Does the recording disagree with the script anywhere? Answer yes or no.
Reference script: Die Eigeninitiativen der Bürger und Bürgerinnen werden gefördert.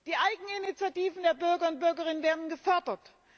no